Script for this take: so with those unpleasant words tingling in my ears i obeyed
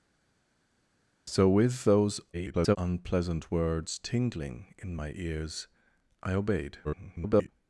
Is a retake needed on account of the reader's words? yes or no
yes